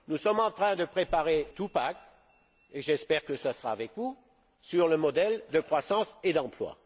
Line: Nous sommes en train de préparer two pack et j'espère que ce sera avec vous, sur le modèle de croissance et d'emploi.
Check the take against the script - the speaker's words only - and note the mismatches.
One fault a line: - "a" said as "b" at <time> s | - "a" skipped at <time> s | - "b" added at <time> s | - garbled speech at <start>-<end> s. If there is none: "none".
none